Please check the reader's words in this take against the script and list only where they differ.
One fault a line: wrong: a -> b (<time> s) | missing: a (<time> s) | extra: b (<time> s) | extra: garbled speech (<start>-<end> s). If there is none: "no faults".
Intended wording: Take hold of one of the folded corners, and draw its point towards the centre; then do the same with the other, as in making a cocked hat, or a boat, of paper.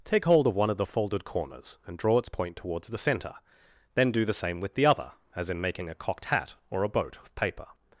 no faults